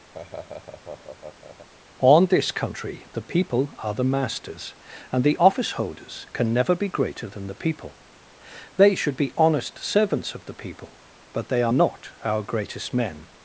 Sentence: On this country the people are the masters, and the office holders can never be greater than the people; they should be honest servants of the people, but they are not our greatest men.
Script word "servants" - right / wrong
right